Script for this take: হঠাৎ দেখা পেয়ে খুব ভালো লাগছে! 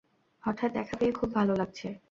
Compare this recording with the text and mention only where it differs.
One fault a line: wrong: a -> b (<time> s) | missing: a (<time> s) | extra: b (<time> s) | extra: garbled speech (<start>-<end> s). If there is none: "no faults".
no faults